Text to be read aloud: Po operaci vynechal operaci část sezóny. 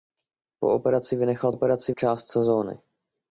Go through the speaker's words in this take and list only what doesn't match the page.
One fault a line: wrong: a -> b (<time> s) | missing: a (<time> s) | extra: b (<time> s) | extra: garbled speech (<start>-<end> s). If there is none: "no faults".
no faults